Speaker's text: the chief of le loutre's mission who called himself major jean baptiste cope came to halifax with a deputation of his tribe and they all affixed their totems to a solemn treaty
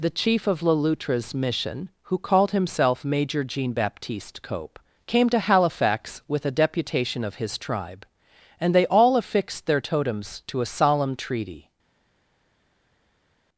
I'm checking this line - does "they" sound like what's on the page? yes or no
yes